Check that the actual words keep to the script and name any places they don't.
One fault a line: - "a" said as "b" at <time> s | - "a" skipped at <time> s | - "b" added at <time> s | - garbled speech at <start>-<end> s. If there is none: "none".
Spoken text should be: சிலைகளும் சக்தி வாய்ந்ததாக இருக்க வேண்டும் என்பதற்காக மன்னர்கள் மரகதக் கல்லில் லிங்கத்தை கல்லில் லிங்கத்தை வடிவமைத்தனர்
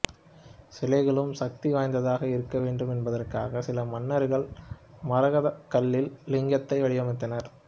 - "சில" added at 3.6 s
- "கல்லில் லிங்கத்தை" skipped at 6.8 s